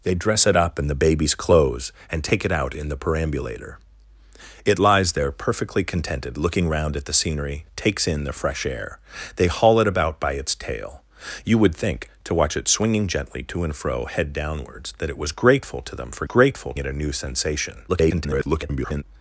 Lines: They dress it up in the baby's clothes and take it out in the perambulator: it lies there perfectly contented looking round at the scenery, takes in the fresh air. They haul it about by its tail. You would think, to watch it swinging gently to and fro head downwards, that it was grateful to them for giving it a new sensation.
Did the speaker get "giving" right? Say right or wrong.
wrong